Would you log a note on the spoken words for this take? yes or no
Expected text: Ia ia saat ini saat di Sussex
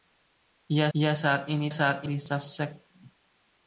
no